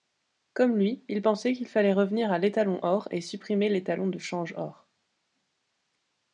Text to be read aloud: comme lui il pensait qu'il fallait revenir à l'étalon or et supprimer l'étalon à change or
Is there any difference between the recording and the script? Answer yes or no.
yes